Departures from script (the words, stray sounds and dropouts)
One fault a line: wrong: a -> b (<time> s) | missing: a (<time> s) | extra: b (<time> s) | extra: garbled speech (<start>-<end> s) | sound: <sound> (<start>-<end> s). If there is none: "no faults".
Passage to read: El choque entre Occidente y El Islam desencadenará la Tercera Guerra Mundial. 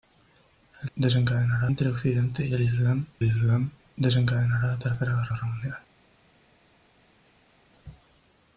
wrong: choque -> desencadenará (0.9 s)
extra: Islam (3.2 s)
extra: Guerra (5.3 s)